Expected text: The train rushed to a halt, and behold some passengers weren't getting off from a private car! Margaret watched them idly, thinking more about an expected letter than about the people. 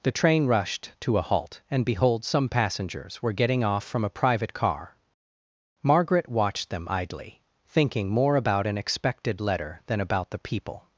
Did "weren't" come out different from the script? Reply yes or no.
yes